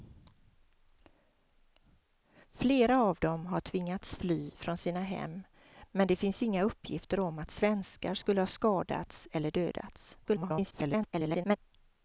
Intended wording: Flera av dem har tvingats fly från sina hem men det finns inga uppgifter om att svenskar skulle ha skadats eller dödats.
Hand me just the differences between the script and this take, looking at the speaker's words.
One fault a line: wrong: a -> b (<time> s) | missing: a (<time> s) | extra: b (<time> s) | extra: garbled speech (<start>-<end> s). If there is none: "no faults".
extra: garbled speech (10.2-11.6 s)